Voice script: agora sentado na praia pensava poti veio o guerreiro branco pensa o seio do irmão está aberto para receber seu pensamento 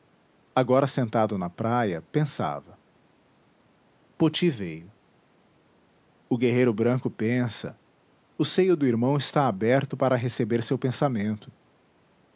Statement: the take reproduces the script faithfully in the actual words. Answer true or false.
true